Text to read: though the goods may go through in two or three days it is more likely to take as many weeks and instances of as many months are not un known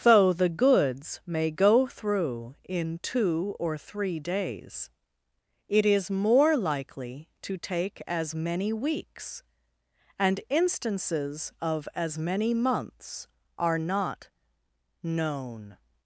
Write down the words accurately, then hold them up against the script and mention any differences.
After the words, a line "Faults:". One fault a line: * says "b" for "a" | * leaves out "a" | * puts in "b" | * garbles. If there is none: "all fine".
though the goods may go through in two or three days it is more likely to take as many weeks and instances of as many months are not known
Faults:
* leaves out "un"